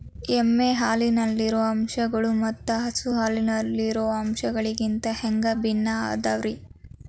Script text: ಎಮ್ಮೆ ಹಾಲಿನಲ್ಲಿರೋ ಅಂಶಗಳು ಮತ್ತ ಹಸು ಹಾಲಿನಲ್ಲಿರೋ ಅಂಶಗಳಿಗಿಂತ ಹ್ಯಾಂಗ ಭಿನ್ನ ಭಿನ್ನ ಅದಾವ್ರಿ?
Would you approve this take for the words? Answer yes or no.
no